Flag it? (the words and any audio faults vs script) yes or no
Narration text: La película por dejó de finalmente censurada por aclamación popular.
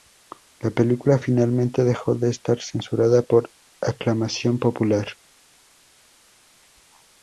yes